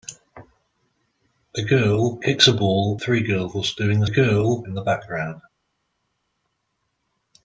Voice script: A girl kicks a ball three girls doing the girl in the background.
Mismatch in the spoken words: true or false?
false